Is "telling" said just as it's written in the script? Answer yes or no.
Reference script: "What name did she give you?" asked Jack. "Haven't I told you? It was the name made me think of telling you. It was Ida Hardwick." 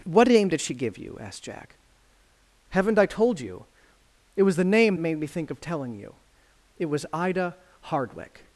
yes